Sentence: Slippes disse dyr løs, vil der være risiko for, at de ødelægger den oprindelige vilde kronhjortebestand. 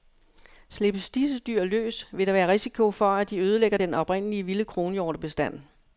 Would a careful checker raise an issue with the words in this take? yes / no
no